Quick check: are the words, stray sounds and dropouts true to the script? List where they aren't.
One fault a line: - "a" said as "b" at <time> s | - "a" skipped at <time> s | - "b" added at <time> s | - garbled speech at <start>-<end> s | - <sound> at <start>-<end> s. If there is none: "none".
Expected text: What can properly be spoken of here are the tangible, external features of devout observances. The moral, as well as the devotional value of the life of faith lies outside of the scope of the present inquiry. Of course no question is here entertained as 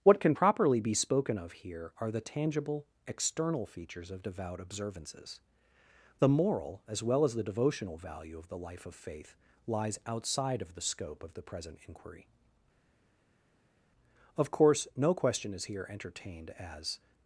none